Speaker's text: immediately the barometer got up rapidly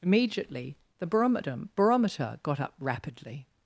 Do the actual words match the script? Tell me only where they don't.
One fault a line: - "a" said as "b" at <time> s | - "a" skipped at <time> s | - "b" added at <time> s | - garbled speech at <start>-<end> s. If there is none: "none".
- "barometer" added at 1.8 s